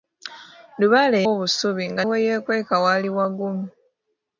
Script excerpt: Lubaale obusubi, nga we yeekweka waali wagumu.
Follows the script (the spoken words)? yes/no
yes